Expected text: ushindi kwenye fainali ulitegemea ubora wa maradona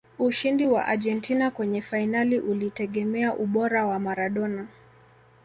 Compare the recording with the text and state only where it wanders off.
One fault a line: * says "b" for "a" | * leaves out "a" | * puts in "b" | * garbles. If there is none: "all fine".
* puts in "wa argentina"